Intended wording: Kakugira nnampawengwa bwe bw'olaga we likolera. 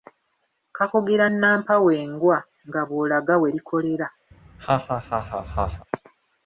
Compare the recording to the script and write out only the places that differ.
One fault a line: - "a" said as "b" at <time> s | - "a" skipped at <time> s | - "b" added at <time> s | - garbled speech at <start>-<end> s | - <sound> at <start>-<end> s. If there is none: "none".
- "bwe" said as "nga" at 2.7 s
- laugh at 4.3-5.9 s